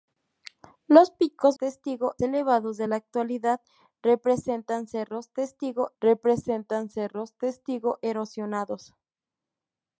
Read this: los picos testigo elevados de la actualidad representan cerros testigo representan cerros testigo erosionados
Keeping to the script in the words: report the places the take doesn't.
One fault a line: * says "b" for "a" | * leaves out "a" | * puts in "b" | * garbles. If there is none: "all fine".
all fine